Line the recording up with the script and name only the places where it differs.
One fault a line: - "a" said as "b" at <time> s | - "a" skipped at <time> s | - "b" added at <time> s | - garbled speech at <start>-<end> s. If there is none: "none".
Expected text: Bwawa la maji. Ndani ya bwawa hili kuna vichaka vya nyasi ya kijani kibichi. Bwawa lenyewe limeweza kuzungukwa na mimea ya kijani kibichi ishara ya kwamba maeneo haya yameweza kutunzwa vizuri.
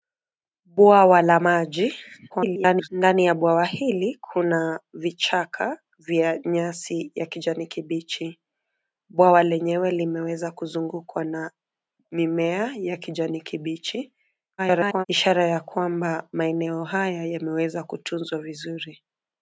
- garbled speech at 2.3-2.9 s
- garbled speech at 14.6-15.1 s